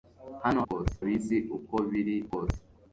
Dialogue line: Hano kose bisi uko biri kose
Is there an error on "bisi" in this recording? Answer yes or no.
no